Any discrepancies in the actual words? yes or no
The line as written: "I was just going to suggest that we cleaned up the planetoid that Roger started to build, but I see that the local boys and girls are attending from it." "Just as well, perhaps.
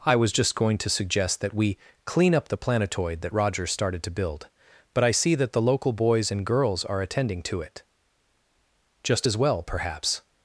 yes